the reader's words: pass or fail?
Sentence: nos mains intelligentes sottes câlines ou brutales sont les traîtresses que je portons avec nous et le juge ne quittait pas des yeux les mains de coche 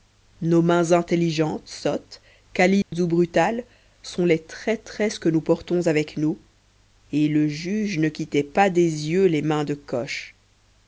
fail